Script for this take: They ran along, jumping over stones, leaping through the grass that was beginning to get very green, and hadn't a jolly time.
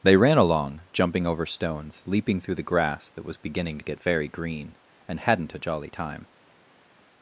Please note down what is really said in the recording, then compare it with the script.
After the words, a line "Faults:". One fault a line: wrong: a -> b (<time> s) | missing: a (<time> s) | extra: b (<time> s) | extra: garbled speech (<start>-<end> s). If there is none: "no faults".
They ran along, jumping over stones, leaping through the grass that was beginning to get very green, and hadn't a jolly time.
Faults:
no faults